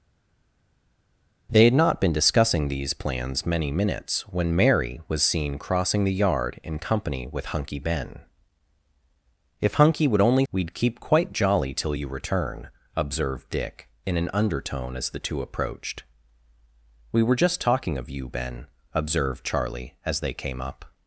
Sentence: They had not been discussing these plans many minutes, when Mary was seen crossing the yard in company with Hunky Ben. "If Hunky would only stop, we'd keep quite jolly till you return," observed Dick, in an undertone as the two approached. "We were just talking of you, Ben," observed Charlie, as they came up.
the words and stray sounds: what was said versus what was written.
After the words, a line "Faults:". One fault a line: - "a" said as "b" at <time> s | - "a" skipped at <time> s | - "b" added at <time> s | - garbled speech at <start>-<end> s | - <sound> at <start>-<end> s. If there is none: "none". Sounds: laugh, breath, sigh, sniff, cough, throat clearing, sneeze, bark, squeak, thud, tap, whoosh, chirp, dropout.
They had not been discussing these plans many minutes, when Mary was seen crossing the yard in company with Hunky Ben. "If Hunky would only we'd keep quite jolly till you return," observed Dick, in an undertone as the two approached. "We were just talking of you, Ben," observed Charlie, as they came up.
Faults:
- "stop" skipped at 10.4 s